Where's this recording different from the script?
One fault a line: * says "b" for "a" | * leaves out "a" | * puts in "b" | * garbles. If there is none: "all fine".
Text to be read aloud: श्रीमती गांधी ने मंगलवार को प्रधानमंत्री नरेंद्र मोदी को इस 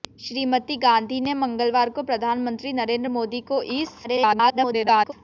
* garbles